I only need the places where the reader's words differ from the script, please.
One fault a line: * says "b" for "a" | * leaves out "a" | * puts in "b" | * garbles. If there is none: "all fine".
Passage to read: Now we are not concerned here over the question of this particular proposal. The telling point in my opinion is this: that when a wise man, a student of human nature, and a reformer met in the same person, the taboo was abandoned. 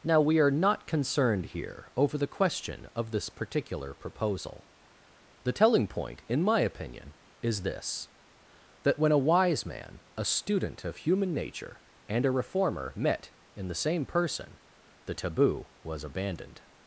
all fine